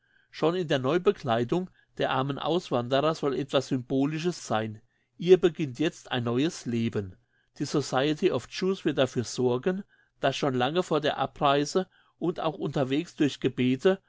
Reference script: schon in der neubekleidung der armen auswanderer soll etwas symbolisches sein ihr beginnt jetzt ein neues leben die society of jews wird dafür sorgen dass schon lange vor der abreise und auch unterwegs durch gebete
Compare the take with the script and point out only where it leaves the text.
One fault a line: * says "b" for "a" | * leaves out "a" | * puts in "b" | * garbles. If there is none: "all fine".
all fine